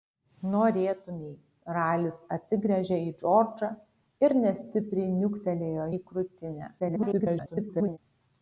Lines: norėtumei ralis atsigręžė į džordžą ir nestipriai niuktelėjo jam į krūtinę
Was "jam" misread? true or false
true